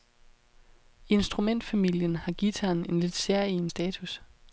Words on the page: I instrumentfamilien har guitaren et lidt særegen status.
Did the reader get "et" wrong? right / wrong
wrong